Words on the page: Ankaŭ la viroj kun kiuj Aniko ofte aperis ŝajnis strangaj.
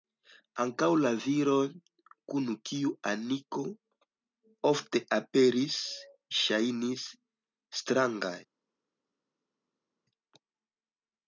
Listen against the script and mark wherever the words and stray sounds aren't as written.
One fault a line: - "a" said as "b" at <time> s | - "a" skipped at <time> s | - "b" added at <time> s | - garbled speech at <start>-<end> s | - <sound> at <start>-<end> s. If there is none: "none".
none